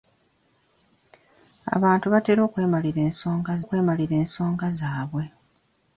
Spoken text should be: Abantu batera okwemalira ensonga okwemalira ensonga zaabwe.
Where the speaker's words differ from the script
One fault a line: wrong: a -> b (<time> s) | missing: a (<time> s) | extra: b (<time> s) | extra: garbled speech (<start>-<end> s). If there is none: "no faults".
no faults